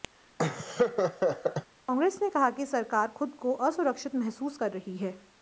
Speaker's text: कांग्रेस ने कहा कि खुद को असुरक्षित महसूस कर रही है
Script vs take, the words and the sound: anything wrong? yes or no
yes